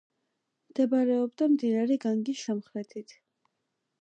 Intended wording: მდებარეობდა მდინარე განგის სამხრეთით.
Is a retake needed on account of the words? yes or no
no